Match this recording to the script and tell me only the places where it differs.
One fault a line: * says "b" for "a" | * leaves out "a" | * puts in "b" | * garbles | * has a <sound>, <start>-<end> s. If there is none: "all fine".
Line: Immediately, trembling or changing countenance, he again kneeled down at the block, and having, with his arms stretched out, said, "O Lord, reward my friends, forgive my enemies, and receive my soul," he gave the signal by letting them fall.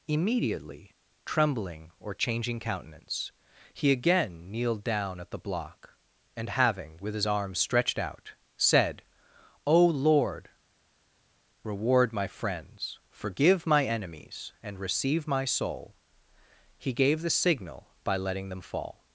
all fine